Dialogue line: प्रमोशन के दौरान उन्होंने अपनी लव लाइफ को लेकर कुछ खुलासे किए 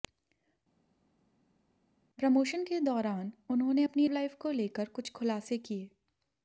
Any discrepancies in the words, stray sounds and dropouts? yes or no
yes